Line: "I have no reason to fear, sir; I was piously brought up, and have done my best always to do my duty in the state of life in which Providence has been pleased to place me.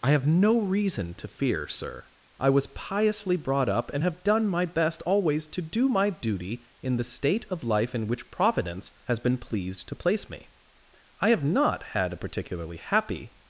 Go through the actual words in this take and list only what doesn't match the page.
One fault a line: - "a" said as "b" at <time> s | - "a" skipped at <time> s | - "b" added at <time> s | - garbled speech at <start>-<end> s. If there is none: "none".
- "I have not had a particularly happy" added at 11.2 s